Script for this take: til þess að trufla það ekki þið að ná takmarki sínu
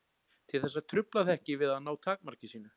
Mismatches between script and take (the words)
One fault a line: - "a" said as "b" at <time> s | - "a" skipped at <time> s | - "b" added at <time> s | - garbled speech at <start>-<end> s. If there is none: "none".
- "þið" said as "við" at 1.6 s